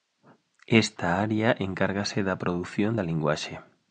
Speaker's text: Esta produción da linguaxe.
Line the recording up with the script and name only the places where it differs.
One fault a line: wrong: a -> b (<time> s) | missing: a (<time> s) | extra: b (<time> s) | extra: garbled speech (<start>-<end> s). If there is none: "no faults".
extra: área encárgase da (1.2 s)